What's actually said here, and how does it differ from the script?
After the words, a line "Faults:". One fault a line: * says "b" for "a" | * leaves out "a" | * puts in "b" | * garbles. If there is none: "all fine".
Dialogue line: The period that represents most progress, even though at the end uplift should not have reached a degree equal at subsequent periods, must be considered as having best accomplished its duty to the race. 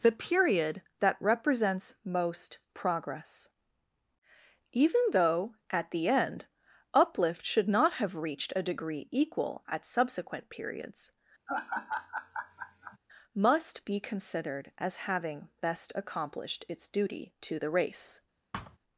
The period that represents most progress, even though at the end uplift should not have reached a degree equal at subsequent periods, must be considered as having best accomplished its duty to the race.
Faults:
all fine